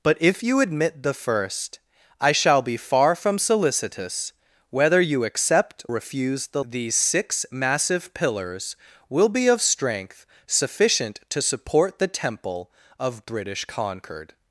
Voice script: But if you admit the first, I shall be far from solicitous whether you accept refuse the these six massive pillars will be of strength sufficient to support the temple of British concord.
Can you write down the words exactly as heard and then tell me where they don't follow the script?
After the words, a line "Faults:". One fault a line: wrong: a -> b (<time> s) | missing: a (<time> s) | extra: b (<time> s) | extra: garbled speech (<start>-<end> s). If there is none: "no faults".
But if you admit the first, I shall be far from solicitous whether you accept refuse the these six massive pillars will be of strength sufficient to support the temple of British concord.
Faults:
no faults